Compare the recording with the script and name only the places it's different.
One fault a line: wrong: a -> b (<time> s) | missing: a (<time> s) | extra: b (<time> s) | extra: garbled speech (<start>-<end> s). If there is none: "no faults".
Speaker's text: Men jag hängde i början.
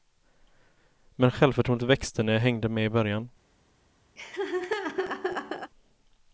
extra: självförtroendet växte när (1.3 s)
extra: med (2.7 s)